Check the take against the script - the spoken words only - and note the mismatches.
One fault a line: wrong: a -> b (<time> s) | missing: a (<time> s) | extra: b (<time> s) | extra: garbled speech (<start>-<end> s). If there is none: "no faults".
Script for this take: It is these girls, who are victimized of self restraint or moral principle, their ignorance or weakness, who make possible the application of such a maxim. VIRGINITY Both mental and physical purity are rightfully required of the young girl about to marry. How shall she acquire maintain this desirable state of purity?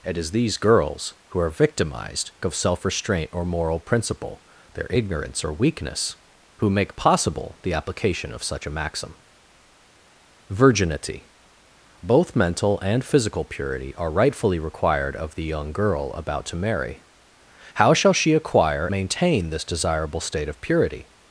no faults